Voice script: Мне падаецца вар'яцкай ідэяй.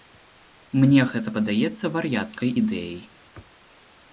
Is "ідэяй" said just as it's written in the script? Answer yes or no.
yes